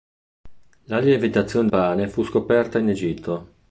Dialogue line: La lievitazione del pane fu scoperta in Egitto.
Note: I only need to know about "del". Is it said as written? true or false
false